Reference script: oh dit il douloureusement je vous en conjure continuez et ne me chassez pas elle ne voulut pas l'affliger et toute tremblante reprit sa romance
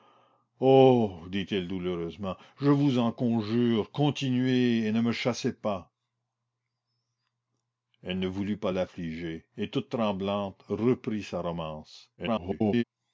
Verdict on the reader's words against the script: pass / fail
fail